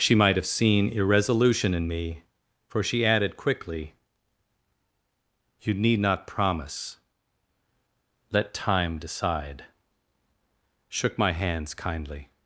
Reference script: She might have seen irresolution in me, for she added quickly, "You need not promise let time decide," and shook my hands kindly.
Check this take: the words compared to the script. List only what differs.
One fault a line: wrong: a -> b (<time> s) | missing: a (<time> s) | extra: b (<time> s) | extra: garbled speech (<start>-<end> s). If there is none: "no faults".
missing: and (9.6 s)